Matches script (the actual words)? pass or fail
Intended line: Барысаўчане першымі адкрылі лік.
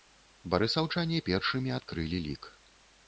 pass